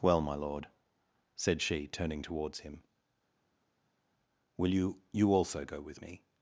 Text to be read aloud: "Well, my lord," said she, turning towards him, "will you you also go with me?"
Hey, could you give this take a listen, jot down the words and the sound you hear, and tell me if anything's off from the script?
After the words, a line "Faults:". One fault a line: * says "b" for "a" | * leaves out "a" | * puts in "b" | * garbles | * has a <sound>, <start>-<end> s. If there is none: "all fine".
"Well, my lord," said she, turning towards him, "will you you also go with me?"
Faults:
all fine